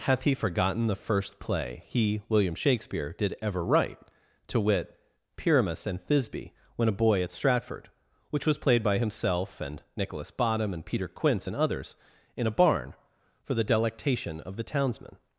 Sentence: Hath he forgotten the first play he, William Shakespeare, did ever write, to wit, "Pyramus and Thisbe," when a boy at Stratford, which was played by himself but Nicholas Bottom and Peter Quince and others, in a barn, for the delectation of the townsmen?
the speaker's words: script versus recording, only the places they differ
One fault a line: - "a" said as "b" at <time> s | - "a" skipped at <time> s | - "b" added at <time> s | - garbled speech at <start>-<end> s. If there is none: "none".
- "but" said as "and" at 9.6 s